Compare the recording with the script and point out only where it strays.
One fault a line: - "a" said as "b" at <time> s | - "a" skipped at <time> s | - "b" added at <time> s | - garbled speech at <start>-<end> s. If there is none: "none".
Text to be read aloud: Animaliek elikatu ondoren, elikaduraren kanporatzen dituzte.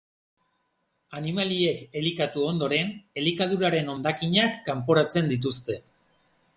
- "hondakinak" added at 4.0 s